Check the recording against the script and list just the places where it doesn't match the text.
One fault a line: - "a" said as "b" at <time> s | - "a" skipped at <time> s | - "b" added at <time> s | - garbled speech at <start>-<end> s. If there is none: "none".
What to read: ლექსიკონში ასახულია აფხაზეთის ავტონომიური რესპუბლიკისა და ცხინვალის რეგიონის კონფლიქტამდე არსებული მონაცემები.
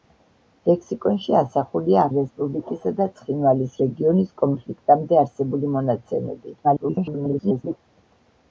- "აფხაზეთის ავტონომიური" skipped at 2.0 s
- garbled speech at 6.6-7.8 s